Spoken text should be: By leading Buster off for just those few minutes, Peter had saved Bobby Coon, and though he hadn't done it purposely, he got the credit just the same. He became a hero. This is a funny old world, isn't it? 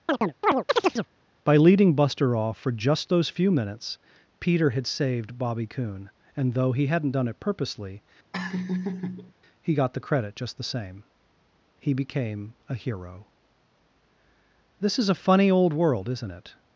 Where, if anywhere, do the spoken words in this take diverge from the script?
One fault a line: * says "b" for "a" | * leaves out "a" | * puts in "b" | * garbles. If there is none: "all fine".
all fine